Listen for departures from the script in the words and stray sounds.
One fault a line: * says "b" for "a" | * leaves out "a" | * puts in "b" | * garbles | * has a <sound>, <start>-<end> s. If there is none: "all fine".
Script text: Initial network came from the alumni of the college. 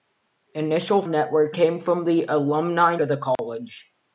* has a dropout, 3.4-3.4 s